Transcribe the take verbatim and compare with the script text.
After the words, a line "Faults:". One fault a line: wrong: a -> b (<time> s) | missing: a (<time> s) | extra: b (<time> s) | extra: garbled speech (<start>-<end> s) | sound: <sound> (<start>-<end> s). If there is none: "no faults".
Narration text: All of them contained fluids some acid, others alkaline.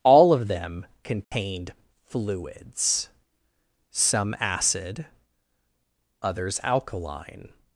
All of them contained fluids some acid, others alkaline.
Faults:
sound: dropout (1.2-1.3 s)